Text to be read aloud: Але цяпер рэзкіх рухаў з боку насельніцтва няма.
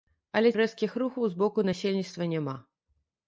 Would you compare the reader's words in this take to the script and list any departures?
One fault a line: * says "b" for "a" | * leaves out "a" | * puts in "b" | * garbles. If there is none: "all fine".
* leaves out "цяпер"